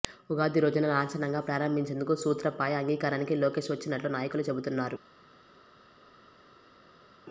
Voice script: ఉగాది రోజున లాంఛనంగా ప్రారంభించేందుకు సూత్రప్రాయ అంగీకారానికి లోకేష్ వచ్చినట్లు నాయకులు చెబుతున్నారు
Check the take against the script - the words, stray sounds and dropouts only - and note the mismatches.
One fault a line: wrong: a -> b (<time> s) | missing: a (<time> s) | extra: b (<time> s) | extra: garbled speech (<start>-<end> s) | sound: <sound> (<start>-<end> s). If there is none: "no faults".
no faults